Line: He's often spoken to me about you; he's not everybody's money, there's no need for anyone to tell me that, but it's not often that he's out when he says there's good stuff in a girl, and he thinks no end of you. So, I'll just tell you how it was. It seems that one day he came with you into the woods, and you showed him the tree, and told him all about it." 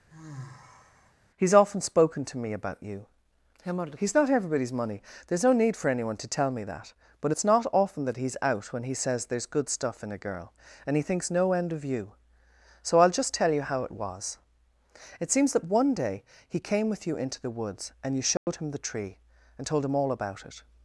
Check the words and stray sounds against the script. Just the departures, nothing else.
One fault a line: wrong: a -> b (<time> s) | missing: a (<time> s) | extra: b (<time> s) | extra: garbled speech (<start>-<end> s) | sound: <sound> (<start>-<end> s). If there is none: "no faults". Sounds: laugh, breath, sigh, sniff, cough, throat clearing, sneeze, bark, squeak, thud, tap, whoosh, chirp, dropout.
sound: sigh (0.1-1.1 s)
sound: dropout (18.4-18.5 s)